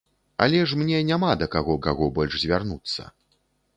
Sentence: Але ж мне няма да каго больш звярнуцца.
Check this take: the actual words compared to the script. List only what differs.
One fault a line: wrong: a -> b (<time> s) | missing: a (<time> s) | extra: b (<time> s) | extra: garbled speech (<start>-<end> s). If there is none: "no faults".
extra: каго (1.9 s)